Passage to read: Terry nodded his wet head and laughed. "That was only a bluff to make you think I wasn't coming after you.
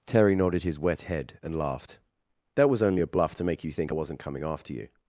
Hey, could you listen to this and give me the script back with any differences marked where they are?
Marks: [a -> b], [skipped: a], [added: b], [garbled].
Terry nodded his wet head and laughed. "That was only a bluff to make you think I wasn't coming after you.